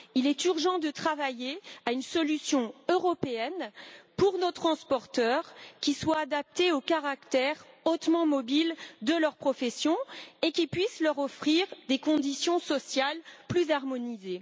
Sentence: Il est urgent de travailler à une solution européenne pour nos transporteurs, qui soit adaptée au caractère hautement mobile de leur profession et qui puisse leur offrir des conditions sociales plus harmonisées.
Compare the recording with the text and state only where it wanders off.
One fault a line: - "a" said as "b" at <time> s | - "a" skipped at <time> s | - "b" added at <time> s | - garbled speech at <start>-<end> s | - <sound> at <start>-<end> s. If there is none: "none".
none